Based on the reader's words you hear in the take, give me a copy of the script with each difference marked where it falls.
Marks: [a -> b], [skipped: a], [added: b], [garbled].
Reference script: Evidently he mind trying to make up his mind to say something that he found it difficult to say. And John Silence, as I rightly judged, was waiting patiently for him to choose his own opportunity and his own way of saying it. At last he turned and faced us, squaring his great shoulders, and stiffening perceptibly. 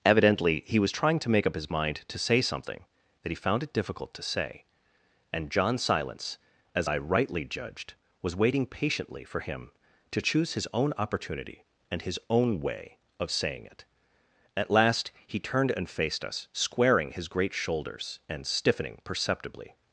Evidently he [mind -> was] trying to make up his mind to say something that he found it difficult to say. And John Silence, as I rightly judged, was waiting patiently for him to choose his own opportunity and his own way of saying it. At last he turned and faced us, squaring his great shoulders, and stiffening perceptibly.